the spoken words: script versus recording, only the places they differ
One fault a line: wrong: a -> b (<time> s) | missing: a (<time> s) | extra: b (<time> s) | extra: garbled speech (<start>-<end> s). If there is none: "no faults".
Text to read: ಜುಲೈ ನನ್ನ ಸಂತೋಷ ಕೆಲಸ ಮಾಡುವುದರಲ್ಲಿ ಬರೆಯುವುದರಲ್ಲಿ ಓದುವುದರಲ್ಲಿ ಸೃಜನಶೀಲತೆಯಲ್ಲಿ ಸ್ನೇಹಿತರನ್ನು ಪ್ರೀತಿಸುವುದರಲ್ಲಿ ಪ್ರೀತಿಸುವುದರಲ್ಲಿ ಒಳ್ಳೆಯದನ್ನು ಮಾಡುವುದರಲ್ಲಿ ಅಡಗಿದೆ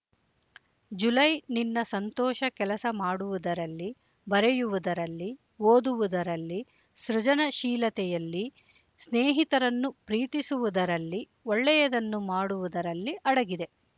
wrong: ನನ್ನ -> ನಿನ್ನ (1.5 s)
missing: ಪ್ರೀತಿಸುವುದರಲ್ಲಿ (11.2 s)